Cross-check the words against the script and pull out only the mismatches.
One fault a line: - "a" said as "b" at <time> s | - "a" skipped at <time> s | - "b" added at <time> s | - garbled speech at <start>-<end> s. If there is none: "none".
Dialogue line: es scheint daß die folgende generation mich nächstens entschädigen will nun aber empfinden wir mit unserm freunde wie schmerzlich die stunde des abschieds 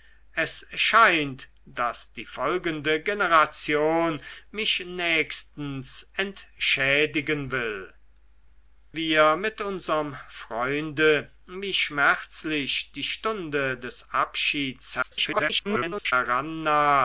- "nun aber empfinden" skipped at 7.9 s
- garbled speech at 15.0-16.1 s